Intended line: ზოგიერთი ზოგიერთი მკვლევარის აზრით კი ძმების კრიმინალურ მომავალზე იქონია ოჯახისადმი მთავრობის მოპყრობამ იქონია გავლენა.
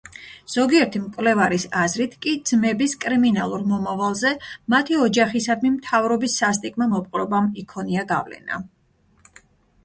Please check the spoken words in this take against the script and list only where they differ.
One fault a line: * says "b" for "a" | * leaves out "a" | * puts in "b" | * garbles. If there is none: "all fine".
* leaves out "ზოგიერთი"
* says "მათი" for "იქონია"
* puts in "სასტიკმა"